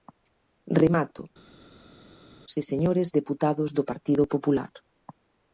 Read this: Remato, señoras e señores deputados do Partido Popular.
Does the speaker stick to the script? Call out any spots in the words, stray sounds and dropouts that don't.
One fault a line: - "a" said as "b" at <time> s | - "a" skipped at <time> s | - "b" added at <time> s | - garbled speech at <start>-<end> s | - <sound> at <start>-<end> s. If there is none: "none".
- "señoras" skipped at 1.2 s